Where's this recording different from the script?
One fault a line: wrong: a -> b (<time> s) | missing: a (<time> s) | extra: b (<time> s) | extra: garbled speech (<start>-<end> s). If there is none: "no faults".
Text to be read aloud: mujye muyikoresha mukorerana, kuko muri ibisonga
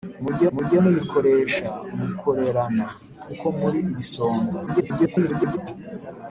extra: mujye (0.5 s)
extra: garbled speech (4.7-5.6 s)